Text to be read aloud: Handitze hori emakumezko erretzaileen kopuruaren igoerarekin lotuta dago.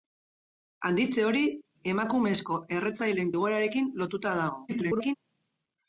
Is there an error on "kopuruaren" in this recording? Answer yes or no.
yes